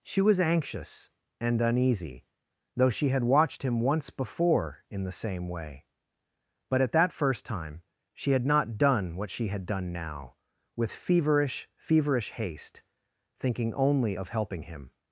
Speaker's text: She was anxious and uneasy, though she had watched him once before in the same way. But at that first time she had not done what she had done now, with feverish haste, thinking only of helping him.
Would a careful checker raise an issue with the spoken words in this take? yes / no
yes